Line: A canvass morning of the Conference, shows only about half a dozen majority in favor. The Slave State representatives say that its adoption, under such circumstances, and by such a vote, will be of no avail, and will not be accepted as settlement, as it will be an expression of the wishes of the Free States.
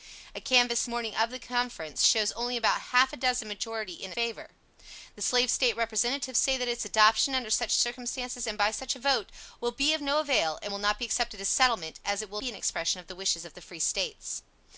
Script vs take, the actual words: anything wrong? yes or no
no